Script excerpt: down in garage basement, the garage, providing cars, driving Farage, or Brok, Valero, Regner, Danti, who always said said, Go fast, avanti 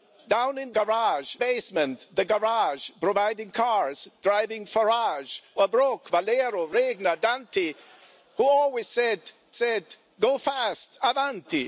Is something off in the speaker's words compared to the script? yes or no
no